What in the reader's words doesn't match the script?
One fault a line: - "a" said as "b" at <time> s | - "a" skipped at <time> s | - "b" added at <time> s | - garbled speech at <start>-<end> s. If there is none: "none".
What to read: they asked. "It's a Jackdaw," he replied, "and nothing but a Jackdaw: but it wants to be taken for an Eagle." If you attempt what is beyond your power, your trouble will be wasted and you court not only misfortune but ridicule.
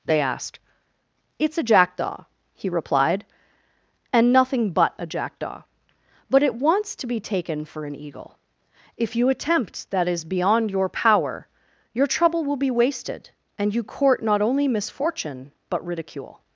- "what" said as "that" at 9.9 s